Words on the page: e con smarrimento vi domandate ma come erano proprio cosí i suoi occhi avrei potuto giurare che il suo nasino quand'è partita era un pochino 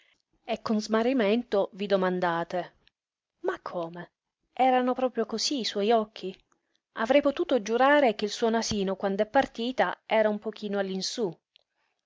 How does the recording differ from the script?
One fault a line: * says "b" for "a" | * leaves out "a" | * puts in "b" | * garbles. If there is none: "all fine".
all fine